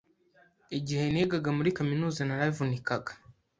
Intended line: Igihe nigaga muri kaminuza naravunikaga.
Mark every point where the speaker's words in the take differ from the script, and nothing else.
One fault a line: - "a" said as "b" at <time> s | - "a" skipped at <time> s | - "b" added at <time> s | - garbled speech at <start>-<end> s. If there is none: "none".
none